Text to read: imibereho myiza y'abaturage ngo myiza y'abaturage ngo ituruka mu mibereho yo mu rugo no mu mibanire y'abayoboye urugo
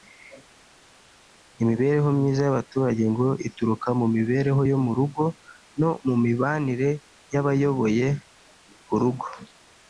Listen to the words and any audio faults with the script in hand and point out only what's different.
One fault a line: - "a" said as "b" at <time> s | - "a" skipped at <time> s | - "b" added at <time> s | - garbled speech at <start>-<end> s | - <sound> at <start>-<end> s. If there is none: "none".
- "myiza y'abaturage ngo" skipped at 3.3 s